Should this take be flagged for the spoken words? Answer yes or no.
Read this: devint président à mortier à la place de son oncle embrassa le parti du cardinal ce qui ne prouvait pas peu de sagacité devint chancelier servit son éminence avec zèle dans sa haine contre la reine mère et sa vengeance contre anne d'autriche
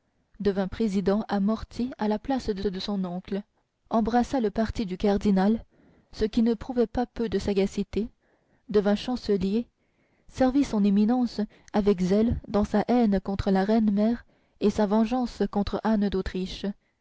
yes